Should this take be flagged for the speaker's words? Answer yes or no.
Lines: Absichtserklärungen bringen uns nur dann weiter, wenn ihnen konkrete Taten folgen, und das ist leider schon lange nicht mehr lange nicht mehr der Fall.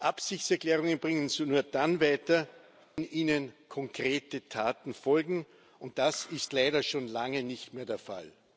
yes